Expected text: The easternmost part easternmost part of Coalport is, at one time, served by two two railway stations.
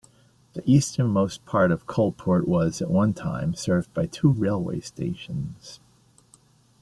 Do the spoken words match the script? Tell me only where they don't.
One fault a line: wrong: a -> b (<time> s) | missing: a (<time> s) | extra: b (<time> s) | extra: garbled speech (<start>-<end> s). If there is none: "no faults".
missing: easternmost part (1.7 s)
wrong: is -> was (2.5 s)
missing: two (4.3 s)